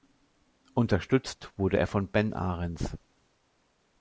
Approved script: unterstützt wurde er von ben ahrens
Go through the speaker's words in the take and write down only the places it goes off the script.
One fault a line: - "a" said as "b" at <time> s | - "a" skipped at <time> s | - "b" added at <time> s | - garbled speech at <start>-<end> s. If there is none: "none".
none